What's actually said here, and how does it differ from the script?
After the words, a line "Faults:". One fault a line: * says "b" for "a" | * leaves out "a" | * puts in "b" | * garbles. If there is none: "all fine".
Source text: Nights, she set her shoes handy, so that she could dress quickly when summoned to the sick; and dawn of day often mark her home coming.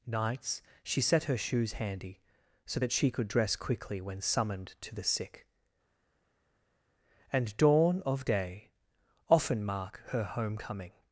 Nights, she set her shoes handy, so that she could dress quickly when summoned to the sick; and dawn of day often mark her home coming.
Faults:
all fine